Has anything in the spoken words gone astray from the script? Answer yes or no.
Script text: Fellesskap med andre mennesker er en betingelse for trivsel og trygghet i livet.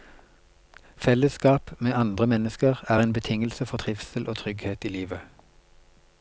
no